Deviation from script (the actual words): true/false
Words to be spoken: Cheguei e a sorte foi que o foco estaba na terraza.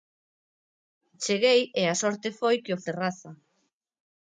true